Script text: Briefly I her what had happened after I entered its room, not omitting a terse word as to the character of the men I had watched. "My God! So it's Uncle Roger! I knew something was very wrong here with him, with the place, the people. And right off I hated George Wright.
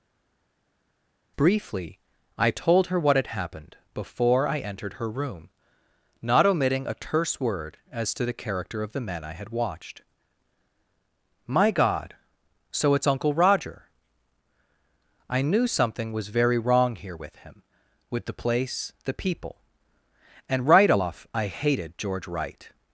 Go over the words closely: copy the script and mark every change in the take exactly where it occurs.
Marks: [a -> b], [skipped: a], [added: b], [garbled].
Briefly I [added: told] her what had happened [after -> before] I entered [its -> her] room, not omitting a terse word as to the character of the men I had watched. "My God! So it's Uncle Roger! I knew something was very wrong here with him, with the place, the people. And right off I hated George Wright.